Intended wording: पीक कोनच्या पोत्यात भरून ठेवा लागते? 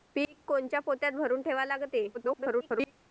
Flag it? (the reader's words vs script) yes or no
yes